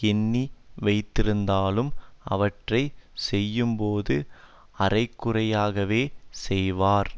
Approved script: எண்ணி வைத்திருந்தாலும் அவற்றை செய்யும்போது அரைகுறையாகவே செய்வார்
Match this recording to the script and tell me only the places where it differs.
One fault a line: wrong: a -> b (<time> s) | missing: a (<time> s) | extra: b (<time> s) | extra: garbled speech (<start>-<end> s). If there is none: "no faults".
no faults